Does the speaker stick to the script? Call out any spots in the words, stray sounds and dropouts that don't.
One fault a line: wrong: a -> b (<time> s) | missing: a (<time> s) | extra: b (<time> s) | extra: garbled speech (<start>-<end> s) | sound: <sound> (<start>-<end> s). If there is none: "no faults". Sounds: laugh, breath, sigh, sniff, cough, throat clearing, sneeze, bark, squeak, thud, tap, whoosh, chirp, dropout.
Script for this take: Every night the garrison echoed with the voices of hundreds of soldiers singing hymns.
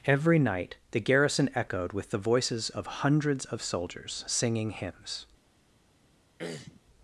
sound: throat clearing (6.4-6.8 s)